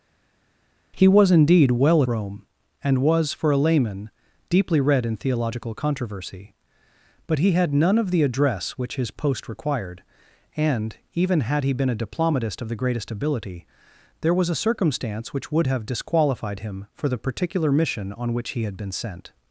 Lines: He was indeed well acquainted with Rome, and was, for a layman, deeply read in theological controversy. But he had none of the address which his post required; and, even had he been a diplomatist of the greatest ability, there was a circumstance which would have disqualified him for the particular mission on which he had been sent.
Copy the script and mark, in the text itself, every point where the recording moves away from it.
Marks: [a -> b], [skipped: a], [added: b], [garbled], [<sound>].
He was indeed well [skipped: acquainted with] Rome, and was, for a layman, deeply read in theological controversy. But he had none of the address which his post required; and, even had he been a diplomatist of the greatest ability, there was a circumstance which would have disqualified him for the particular mission on which he had been sent.